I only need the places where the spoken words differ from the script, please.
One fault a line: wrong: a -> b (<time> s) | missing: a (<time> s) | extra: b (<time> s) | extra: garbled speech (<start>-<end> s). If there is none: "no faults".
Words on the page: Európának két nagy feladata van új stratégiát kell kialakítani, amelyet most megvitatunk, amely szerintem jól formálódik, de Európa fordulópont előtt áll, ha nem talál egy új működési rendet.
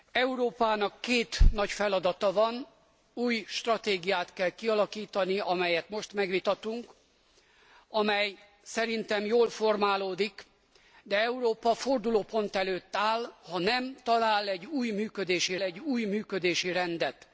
extra: egy új működési (15.6 s)